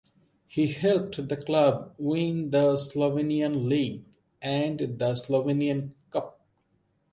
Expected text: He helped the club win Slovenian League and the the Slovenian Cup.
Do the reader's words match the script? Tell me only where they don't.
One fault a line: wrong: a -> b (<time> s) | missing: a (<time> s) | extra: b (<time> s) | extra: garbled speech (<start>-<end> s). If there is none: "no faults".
extra: the (2.5 s)
missing: the (5.1 s)